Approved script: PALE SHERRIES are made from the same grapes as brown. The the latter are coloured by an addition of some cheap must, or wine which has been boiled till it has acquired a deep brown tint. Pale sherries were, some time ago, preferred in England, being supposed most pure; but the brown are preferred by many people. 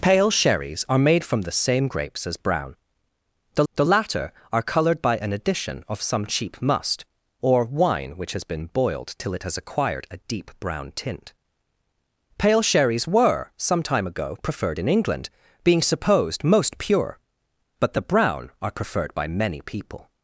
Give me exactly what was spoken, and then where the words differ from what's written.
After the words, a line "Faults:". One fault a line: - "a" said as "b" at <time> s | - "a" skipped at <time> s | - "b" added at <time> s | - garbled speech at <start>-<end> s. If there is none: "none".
PALE SHERRIES are made from the same grapes as brown. The the latter are coloured by an addition of some cheap must, or wine which has been boiled till it has acquired a deep brown tint. Pale sherries were, some time ago, preferred in England, being supposed most pure; but the brown are preferred by many people.
Faults:
none